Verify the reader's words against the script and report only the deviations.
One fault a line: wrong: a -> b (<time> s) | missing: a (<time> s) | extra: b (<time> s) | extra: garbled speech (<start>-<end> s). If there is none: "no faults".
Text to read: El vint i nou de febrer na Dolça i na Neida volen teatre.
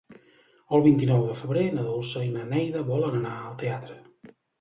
extra: anar al (3.2 s)